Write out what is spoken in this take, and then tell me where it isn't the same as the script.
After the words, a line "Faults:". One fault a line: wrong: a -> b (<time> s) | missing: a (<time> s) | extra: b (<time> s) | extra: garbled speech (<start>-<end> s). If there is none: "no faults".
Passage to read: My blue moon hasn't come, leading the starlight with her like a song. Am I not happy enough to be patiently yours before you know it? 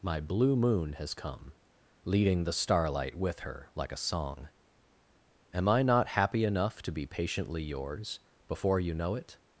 My blue moon has come, leading the starlight with her like a song. Am I not happy enough to be patiently yours before you know it?
Faults:
wrong: hasn't -> has (0.9 s)